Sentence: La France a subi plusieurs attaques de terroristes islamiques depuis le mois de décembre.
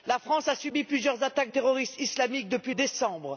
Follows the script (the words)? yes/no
no